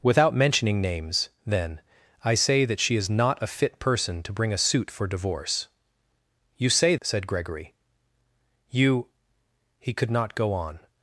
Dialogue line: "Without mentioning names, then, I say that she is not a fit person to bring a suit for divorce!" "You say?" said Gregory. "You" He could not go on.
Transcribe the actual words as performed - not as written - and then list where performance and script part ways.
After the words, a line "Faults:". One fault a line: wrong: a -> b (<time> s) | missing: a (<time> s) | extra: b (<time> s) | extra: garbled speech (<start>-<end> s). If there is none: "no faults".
"Without mentioning names, then, I say that she is not a fit person to bring a suit for divorce!" "You say?" said Gregory. "You" He could not go on.
Faults:
no faults